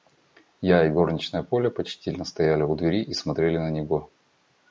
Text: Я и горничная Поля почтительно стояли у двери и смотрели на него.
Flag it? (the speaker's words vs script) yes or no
no